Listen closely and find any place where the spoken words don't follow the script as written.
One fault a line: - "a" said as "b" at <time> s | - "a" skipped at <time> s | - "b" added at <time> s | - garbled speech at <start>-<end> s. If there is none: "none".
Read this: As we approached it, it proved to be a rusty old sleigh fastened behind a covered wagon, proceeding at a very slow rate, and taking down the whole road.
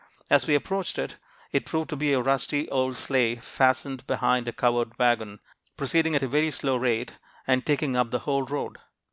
- "down" said as "up" at 8.0 s